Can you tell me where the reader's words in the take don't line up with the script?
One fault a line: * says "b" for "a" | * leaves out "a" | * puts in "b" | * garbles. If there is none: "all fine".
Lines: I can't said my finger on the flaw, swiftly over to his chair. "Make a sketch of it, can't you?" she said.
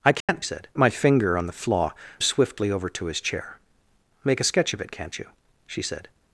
all fine